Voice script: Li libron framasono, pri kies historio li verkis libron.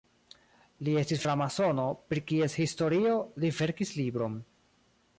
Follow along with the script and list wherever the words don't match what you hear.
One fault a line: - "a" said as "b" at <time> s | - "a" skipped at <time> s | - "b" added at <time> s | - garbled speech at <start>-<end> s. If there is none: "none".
- "libron" said as "estis" at 1.0 s